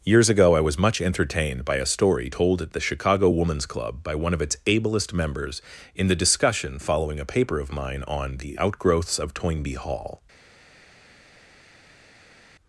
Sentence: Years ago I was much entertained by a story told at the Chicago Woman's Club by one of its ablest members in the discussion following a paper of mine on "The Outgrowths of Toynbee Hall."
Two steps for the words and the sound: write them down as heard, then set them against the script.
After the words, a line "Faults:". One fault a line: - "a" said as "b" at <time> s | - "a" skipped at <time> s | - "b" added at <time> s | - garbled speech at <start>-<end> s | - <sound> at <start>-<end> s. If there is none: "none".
Years ago I was much entertained by a story told at the Chicago Woman's Club by one of its ablest members in the discussion following a paper of mine on "The Outgrowths of Toynbee Hall."
Faults:
none